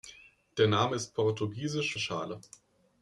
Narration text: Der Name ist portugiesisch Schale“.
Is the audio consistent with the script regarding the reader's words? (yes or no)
yes